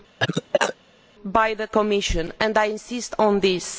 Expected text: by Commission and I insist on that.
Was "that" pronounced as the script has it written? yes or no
no